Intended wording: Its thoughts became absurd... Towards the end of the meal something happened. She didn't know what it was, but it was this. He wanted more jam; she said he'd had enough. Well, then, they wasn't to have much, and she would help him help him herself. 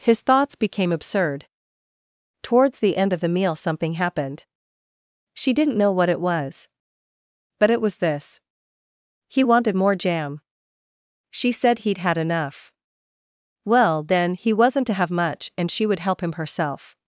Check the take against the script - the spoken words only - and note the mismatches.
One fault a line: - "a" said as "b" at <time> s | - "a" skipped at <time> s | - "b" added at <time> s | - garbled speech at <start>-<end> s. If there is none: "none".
- "Its" said as "His" at 0.0 s
- "they" said as "he" at 14.4 s
- "help him" skipped at 16.4 s